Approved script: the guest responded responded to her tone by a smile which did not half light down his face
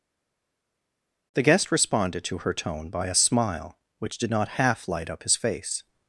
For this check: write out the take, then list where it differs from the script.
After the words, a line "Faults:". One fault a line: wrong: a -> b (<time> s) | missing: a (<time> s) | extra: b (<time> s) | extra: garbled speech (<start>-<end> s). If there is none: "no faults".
the guest responded to her tone by a smile which did not half light up his face
Faults:
missing: responded (2.2 s)
wrong: down -> up (5.1 s)